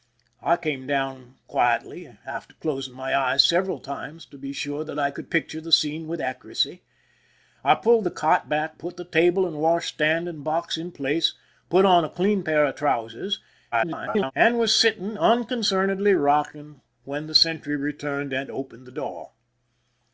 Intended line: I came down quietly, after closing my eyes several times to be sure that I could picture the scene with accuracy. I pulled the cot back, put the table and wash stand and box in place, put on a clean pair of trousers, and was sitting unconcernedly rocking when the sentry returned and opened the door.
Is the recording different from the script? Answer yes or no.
yes